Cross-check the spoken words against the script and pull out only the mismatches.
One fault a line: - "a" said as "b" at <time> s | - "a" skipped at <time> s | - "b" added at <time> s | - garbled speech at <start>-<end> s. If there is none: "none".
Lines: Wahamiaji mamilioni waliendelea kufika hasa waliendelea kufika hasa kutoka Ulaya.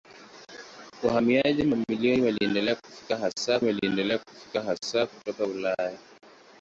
none